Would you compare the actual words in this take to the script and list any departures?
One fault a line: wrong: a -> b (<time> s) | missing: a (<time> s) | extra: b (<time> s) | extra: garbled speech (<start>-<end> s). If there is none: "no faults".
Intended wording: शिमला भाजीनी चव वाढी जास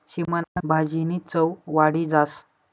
no faults